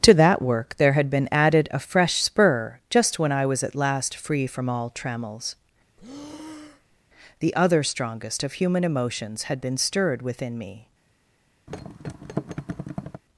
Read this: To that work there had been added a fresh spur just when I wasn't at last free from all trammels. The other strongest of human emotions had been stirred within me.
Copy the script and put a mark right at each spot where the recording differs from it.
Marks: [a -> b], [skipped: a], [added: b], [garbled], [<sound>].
To that work there had been added a fresh spur just when I [wasn't -> was] at last free from all trammels. [breath] The other strongest of human emotions had been stirred within me. [thud]